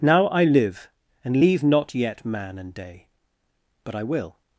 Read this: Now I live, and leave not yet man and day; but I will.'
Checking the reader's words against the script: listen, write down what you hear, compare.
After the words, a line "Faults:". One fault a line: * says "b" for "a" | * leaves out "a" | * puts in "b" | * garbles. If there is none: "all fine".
Now I live, and leave not yet man and day; but I will.'
Faults:
all fine